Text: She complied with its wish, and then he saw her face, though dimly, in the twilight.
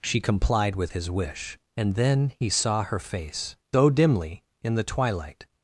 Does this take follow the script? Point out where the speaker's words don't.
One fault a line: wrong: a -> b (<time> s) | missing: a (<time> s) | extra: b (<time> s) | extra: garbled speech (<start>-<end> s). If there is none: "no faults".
wrong: its -> his (0.9 s)